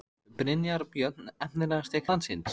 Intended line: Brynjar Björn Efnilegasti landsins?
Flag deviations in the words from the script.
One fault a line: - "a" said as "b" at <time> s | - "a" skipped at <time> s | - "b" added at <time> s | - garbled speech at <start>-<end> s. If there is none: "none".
none